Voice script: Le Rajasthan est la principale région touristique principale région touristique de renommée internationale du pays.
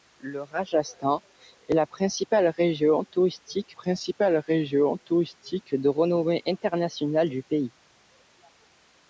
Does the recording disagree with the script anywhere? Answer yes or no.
no